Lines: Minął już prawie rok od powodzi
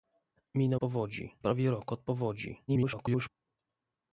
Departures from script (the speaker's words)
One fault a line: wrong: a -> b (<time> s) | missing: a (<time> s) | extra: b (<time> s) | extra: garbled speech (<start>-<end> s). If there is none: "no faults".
wrong: już -> powodzi (0.7 s)
extra: garbled speech (2.7-3.3 s)